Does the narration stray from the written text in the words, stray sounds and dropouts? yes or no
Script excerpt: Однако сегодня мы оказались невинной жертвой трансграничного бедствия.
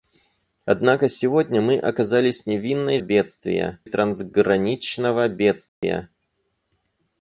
yes